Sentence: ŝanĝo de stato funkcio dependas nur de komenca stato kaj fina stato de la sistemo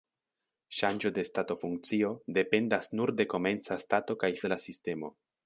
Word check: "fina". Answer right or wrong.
wrong